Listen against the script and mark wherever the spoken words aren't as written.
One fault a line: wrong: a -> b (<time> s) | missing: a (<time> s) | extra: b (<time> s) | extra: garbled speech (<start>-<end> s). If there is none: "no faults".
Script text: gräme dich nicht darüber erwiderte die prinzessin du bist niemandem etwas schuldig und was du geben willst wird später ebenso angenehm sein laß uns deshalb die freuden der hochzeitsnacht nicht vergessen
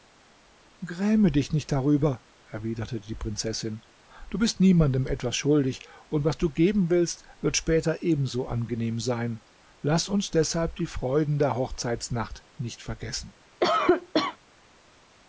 no faults